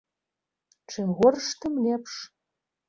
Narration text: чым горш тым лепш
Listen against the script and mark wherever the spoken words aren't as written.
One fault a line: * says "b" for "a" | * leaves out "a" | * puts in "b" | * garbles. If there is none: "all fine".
all fine